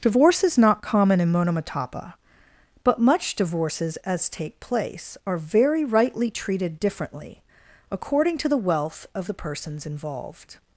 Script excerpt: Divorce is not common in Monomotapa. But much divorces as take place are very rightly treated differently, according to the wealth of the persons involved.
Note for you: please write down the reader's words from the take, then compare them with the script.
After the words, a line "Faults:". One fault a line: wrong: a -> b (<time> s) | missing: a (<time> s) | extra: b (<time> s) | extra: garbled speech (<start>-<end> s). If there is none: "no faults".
Divorce is not common in Monomotapa. But much divorces as take place are very rightly treated differently, according to the wealth of the persons involved.
Faults:
no faults